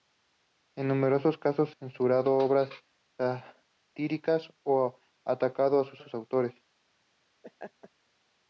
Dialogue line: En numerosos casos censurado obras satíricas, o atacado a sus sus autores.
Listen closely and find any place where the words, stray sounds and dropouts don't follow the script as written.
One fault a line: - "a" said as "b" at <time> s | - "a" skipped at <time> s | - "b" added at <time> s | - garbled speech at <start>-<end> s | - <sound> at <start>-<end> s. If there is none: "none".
- laugh at 7.4-7.9 s